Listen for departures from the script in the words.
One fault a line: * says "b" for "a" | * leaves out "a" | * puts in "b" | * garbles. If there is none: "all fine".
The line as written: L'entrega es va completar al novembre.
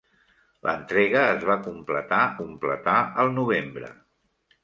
* puts in "completar"